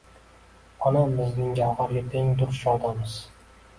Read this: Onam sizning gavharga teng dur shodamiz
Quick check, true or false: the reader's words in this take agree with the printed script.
false